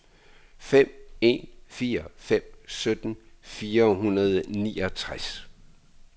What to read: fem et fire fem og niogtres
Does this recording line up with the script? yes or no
no